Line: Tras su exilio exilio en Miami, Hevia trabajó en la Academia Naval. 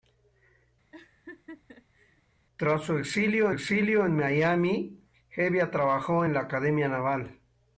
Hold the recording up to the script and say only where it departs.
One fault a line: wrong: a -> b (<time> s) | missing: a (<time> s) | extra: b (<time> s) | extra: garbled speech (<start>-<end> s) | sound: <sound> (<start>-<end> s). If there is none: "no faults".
sound: laugh (0.9-2.2 s)